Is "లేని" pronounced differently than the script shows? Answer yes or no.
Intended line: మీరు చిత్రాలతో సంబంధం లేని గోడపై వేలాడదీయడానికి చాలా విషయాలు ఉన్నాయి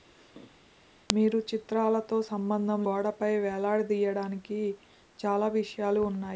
yes